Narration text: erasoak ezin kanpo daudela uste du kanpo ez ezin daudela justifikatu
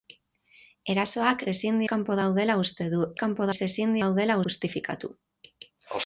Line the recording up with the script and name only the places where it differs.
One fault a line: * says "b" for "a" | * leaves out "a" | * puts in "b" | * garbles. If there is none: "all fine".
all fine